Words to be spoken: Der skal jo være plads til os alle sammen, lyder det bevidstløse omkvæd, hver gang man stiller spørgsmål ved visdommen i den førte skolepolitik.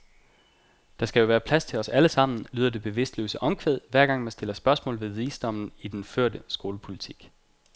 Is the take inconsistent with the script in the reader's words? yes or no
no